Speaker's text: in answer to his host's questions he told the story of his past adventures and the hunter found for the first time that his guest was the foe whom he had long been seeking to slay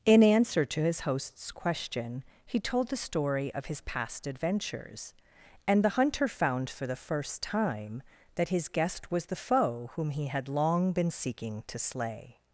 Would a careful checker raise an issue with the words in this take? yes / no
yes